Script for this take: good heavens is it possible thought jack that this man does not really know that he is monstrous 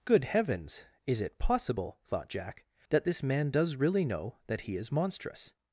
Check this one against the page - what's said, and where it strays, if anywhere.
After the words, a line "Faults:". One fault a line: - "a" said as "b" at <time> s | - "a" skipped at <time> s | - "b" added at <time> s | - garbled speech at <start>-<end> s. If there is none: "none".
good heavens is it possible thought jack that this man does really know that he is monstrous
Faults:
- "not" skipped at 3.7 s